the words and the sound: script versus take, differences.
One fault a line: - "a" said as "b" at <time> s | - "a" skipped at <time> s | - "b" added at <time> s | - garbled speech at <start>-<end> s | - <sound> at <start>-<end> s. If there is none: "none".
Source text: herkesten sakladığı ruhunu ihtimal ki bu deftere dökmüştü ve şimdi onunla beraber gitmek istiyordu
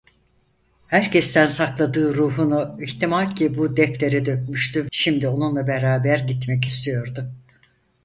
- "ve" skipped at 4.9 s